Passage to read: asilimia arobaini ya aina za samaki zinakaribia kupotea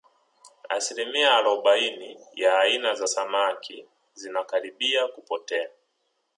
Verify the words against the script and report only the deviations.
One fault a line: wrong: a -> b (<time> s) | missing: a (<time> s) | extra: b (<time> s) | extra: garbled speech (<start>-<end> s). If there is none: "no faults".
no faults